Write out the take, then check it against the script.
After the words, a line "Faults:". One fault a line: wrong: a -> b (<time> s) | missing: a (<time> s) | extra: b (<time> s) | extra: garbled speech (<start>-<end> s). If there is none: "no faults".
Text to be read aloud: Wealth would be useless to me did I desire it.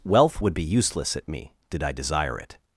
Wealth would be useless at me did I desire it.
Faults:
wrong: to -> at (1.2 s)